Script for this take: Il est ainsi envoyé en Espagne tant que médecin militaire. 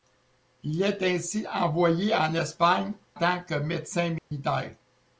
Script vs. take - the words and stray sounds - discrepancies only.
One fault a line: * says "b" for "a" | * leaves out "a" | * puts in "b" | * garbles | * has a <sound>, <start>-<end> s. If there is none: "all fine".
* has a dropout, 4.2-4.3 s